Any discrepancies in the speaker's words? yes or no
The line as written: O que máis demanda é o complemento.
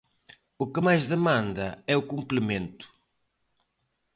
no